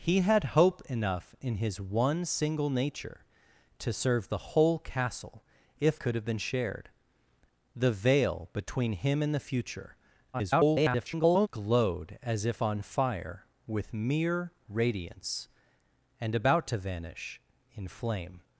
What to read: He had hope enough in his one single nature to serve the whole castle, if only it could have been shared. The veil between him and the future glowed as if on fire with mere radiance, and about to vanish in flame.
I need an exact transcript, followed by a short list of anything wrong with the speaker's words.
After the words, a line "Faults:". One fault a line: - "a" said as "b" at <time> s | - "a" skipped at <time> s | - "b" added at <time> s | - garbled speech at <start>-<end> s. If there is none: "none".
He had hope enough in his one single nature to serve the whole castle, if could have been shared. The veil between him and the future [garbled] glowed as if on fire with mere radiance, and about to vanish in flame.
Faults:
- "only it" skipped at 6.0 s
- garbled speech at 10.3-11.5 s